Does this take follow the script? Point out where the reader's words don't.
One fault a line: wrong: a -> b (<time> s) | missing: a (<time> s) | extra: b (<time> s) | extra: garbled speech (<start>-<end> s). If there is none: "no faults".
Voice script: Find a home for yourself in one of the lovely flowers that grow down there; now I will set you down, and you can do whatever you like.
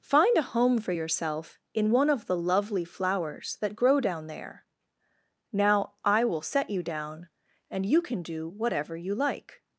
no faults